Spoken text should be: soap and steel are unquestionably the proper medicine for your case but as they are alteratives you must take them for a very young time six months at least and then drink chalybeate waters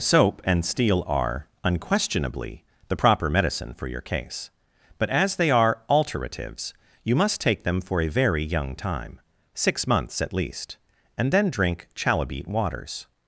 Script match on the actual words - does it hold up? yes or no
yes